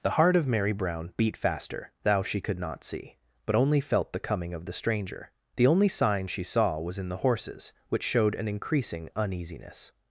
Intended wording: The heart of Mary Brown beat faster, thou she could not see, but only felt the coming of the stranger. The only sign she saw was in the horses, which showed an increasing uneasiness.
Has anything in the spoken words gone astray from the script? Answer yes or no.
no